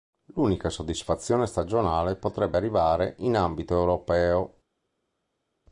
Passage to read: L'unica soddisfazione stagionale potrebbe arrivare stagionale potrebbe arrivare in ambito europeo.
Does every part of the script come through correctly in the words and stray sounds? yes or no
no